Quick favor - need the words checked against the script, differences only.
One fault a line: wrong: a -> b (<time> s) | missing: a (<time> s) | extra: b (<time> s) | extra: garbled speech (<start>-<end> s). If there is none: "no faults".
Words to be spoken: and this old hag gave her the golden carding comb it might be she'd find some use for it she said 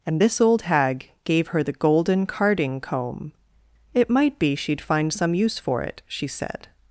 no faults